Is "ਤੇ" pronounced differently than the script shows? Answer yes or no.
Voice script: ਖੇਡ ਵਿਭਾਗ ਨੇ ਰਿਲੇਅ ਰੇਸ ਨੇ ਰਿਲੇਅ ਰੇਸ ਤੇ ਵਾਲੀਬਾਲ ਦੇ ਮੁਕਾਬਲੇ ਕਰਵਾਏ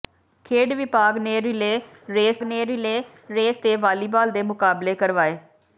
no